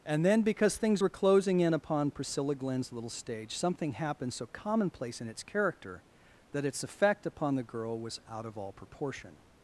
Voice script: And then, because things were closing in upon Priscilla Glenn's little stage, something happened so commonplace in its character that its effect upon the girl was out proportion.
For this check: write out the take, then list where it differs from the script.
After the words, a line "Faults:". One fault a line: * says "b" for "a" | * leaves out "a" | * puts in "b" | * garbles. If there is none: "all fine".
And then, because things were closing in upon Priscilla Glenn's little stage, something happened so commonplace in its character that its effect upon the girl was out of all proportion.
Faults:
* puts in "of all"